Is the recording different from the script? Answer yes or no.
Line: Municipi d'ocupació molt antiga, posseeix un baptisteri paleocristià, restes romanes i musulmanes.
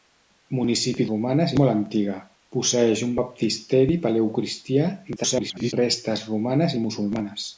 yes